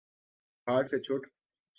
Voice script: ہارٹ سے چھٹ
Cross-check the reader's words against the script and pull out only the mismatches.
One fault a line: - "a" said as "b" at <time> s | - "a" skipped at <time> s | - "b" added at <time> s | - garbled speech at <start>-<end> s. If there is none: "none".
none